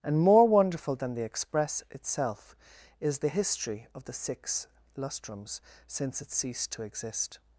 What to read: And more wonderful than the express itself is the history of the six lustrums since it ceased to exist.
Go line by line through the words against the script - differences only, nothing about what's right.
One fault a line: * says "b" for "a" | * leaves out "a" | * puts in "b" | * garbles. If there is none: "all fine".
all fine